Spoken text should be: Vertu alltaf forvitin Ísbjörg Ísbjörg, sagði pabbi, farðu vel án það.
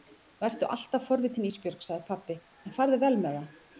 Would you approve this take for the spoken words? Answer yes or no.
no